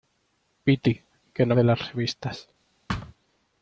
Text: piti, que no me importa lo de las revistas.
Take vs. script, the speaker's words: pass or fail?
fail